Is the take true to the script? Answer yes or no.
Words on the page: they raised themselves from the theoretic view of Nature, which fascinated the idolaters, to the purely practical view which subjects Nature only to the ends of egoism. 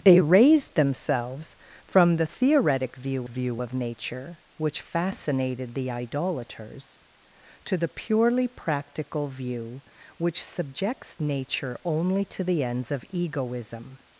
no